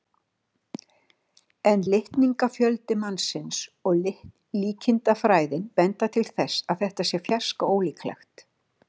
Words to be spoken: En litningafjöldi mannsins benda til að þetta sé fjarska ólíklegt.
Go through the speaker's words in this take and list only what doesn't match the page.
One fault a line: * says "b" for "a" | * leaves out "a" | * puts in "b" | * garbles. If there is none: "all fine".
* puts in "og líkindafræðin"
* puts in "þess"